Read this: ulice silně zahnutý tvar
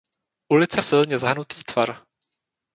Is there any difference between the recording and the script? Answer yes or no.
no